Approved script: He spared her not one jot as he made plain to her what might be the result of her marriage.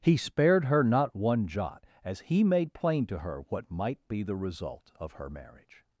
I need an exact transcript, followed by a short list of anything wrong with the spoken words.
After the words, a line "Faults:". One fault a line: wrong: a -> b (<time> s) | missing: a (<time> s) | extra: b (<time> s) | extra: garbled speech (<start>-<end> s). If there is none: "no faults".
He spared her not one jot as he made plain to her what might be the result of her marriage.
Faults:
no faults